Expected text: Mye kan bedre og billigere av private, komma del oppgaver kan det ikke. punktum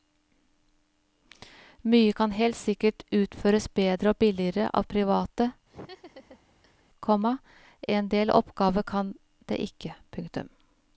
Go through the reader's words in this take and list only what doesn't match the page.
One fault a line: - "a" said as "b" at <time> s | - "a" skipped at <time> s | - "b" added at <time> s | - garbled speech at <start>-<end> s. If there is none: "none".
- "helt sikkert utføres" added at 2.4 s
- "en" added at 8.0 s